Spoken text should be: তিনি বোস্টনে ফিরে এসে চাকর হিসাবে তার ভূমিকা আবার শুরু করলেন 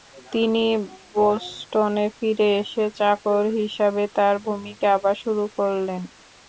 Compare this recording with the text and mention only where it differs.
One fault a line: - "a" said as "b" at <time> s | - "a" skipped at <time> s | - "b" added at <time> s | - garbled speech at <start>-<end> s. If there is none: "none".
none